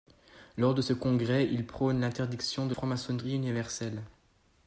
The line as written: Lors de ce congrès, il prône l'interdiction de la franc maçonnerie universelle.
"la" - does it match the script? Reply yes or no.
no